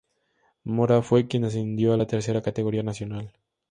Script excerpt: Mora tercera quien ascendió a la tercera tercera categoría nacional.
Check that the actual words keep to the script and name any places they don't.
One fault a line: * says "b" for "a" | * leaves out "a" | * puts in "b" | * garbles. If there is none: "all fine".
* says "fue" for "tercera"
* leaves out "tercera"